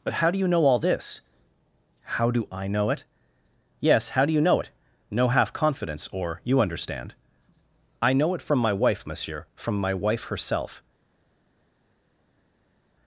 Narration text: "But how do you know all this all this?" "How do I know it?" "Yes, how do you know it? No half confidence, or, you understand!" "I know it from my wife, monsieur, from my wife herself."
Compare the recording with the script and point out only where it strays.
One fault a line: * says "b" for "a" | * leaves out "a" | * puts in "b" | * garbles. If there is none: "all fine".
* leaves out "all this"